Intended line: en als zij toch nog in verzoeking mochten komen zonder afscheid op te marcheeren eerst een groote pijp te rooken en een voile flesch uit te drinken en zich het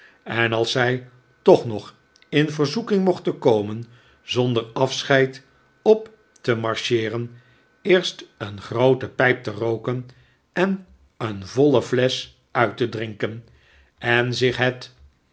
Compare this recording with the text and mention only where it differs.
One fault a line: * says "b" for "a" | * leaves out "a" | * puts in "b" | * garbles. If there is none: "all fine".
all fine